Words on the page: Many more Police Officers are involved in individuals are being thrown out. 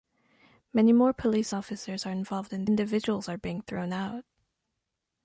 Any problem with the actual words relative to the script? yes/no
no